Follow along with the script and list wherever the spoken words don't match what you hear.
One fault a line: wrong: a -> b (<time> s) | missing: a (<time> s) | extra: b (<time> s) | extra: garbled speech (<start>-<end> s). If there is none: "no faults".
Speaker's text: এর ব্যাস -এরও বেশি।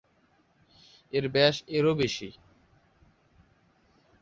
no faults